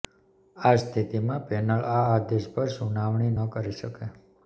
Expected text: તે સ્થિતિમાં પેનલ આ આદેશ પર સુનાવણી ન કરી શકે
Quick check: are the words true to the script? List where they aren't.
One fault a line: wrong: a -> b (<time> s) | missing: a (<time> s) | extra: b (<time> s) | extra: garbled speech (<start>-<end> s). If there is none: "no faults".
wrong: તે -> આ (0.6 s)